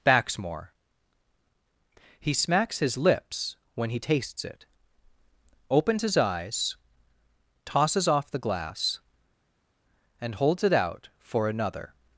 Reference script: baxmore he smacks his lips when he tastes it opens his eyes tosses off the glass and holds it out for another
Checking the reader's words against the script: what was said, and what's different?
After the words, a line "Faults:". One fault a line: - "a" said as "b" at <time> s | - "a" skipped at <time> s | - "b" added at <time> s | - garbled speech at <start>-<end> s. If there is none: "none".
baxmore he smacks his lips when he tastes it opens his eyes tosses off the glass and holds it out for another
Faults:
none